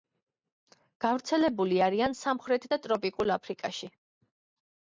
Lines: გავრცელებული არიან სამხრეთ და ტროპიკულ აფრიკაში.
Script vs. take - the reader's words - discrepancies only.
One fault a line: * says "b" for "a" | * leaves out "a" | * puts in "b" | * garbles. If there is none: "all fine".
all fine